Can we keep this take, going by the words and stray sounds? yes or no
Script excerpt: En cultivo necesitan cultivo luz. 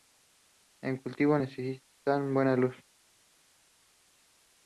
no